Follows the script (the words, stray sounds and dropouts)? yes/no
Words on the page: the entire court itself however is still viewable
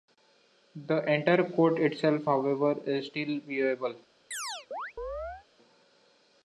no